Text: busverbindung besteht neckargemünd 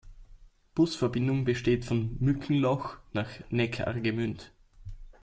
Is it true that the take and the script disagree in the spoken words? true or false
true